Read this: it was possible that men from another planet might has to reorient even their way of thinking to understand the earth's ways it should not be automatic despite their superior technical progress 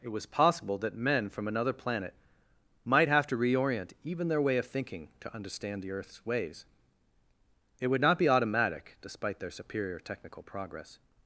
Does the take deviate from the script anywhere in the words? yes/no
yes